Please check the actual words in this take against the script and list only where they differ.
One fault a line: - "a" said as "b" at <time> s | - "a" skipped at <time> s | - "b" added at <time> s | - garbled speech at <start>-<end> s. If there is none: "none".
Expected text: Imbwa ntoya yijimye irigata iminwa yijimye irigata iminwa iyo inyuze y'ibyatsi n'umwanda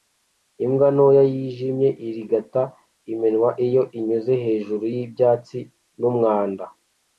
- "yijimye irigata iminwa" skipped at 3.5 s
- "hejuru" added at 4.4 s